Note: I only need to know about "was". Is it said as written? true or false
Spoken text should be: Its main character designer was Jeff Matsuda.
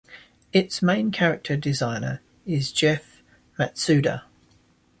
false